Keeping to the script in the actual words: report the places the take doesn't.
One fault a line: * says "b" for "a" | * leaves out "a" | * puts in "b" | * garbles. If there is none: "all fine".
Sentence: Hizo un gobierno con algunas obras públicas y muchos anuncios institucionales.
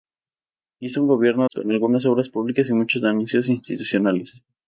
all fine